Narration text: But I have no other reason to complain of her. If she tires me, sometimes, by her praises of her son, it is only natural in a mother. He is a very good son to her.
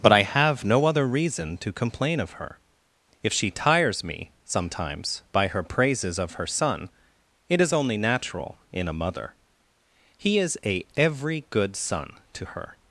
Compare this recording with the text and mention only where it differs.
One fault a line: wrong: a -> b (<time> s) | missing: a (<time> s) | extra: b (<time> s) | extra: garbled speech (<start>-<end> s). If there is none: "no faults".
wrong: very -> every (11.0 s)